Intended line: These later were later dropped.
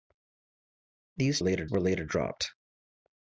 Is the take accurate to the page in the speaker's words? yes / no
yes